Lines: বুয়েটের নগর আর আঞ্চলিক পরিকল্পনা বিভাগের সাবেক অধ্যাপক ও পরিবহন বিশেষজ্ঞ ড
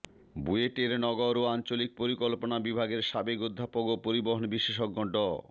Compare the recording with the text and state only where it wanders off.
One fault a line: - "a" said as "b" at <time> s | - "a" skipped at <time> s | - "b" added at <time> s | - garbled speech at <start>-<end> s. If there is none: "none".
- "আর" said as "ও" at 1.4 s